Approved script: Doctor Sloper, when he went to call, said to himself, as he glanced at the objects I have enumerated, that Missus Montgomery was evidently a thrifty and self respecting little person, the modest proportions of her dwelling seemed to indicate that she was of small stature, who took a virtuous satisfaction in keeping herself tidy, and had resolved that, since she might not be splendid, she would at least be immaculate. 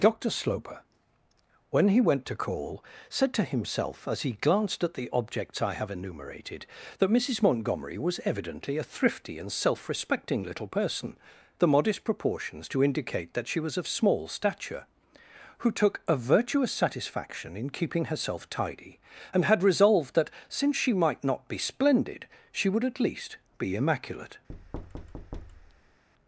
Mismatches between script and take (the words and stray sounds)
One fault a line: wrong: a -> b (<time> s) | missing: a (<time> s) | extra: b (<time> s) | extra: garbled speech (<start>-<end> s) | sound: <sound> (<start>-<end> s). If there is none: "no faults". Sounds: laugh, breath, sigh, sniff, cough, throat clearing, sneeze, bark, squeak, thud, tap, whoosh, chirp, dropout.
missing: of her dwelling seemed (12.7 s)
sound: thud (24.5-26.0 s)